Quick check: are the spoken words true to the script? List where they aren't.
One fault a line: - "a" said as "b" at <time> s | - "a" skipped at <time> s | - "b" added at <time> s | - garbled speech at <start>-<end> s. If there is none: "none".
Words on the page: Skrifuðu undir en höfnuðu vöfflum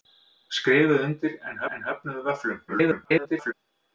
- "en" added at 1.8 s
- garbled speech at 2.7-3.5 s